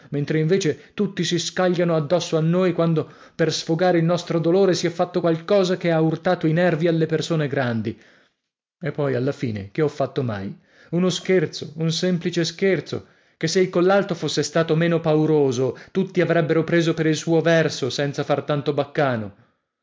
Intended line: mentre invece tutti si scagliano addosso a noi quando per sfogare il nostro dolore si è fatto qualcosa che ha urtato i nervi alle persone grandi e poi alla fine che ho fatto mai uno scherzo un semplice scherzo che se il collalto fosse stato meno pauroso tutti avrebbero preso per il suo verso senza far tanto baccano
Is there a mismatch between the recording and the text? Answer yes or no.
no